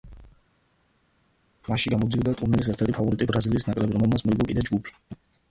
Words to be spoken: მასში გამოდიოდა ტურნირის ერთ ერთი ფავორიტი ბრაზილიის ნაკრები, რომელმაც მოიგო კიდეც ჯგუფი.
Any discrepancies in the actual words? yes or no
no